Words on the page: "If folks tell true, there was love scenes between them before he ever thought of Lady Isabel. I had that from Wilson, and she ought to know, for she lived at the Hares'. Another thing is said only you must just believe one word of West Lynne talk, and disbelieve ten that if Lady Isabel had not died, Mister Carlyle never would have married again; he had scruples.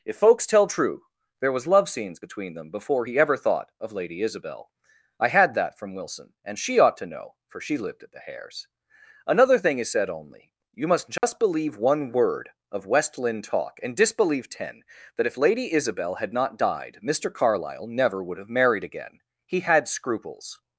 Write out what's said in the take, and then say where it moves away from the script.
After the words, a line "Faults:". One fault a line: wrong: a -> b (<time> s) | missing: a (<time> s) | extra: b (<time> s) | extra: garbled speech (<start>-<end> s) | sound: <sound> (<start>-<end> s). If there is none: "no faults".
"If folks tell true, there was love scenes between them before he ever thought of Lady Isabel. I had that from Wilson, and she ought to know, for she lived at the Hares'. Another thing is said only you must just believe one word of West Lynne talk, and disbelieve ten that if Lady Isabel had not died, Mister Carlyle never would have married again; he had scruples.
Faults:
sound: dropout (11.2-11.2 s)